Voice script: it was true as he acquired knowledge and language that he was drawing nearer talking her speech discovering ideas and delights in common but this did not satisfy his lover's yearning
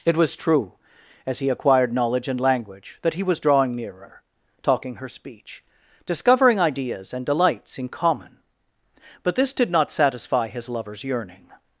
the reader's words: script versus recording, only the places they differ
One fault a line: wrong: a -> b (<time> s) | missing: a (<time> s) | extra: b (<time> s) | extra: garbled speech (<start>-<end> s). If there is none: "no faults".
no faults